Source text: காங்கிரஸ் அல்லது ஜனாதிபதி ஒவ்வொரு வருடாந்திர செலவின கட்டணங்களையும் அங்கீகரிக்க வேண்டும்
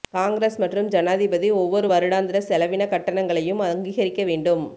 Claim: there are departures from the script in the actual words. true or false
true